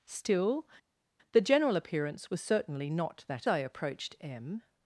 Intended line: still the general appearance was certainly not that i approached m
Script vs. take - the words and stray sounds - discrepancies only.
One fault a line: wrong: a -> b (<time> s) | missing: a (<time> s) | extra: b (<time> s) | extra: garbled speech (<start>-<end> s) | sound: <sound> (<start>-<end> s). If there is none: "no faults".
no faults